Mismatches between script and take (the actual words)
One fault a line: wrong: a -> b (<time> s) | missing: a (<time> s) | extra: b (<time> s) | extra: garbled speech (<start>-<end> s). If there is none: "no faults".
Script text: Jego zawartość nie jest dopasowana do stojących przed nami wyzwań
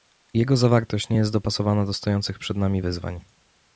no faults